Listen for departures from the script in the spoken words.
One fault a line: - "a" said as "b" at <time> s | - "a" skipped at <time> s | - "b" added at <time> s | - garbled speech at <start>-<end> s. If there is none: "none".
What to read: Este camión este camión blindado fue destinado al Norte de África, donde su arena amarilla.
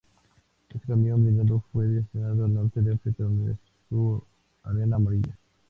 - "este camión" skipped at 1.2 s